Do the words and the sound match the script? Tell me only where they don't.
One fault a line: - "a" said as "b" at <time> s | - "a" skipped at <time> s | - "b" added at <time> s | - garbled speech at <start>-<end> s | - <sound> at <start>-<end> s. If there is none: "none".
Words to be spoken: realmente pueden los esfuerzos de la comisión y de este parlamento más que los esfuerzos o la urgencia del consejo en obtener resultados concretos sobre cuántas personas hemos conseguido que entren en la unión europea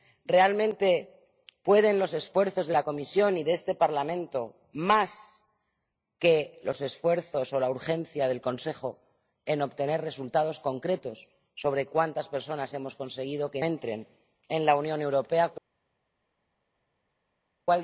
none